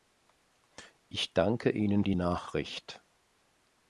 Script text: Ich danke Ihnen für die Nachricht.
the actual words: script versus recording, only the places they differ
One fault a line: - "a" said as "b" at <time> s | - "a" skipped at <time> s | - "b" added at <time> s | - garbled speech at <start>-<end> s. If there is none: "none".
- "für" skipped at 2.0 s